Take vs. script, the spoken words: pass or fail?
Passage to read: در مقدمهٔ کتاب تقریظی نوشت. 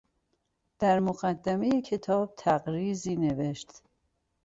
pass